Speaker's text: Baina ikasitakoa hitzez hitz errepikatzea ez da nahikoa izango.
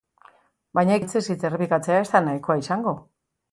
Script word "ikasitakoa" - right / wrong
wrong